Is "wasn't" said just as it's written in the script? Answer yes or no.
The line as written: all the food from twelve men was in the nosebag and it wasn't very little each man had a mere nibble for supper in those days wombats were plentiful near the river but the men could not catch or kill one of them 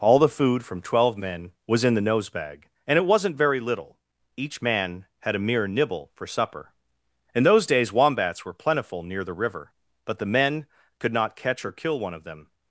yes